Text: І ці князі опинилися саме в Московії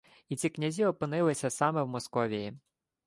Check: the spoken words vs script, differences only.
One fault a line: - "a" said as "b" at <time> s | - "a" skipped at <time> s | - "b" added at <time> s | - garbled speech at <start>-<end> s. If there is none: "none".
none